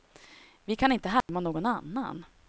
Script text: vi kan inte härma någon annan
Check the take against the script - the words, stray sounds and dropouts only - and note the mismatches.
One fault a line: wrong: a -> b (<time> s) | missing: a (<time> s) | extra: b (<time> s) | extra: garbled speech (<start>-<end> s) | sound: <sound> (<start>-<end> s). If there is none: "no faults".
sound: dropout (1.2-1.3 s)